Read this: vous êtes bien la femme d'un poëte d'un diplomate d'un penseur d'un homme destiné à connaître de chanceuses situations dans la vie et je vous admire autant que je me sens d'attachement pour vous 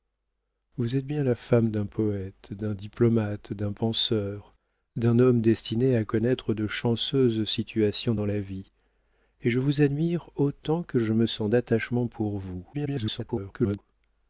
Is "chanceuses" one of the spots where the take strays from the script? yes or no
no